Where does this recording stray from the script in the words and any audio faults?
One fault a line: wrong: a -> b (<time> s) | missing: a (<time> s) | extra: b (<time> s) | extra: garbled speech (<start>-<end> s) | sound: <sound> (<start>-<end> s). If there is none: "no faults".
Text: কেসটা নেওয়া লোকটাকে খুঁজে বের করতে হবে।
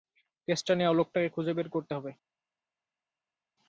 no faults